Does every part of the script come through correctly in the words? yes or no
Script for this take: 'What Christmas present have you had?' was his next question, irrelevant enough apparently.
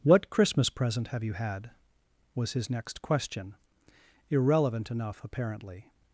yes